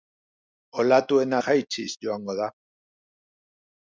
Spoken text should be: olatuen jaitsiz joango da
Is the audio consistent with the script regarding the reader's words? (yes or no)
yes